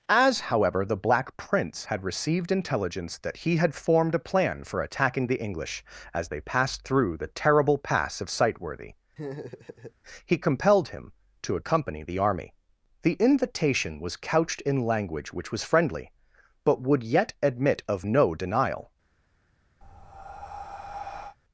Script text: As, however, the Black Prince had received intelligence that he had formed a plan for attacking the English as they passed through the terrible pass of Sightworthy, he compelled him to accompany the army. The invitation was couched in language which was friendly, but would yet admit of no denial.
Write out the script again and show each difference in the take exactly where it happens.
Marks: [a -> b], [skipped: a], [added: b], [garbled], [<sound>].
As, however, the Black Prince had received intelligence that he had formed a plan for attacking the English as they passed through the terrible pass of Sightworthy, [laugh] he compelled him to accompany the army. The invitation was couched in language which was friendly, but would yet admit of no denial. [breath]